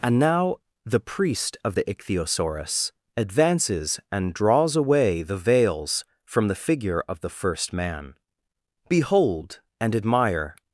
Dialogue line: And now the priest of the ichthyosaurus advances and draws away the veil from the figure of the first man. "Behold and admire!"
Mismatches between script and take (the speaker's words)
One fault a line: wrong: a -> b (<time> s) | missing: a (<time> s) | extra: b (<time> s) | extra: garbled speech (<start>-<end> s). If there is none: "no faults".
wrong: veil -> veils (5.4 s)